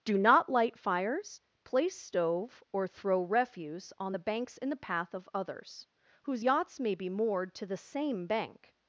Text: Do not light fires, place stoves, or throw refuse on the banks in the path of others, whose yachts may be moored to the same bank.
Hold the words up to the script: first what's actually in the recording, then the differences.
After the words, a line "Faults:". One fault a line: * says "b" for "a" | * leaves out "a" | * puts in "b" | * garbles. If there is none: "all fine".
Do not light fires, place stove, or throw refuse on the banks in the path of others, whose yachts may be moored to the same bank.
Faults:
* says "stove" for "stoves"